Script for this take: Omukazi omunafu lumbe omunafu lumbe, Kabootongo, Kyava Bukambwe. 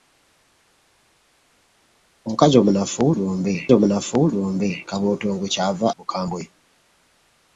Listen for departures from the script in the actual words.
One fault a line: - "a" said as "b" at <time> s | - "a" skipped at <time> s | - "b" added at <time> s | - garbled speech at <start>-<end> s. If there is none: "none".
none